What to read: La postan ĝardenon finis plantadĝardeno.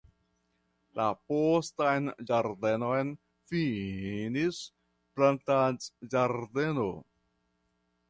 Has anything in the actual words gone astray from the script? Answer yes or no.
no